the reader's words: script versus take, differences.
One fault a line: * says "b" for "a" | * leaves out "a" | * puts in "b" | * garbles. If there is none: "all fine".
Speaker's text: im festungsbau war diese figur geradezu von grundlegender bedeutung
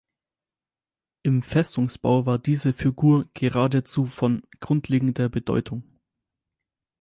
all fine